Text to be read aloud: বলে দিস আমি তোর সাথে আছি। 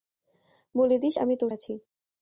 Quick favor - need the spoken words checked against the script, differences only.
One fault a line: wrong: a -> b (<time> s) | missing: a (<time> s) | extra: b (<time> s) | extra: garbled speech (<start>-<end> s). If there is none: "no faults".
missing: সাথে (1.5 s)